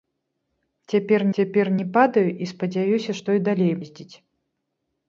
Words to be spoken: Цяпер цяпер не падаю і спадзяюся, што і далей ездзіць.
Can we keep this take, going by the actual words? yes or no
yes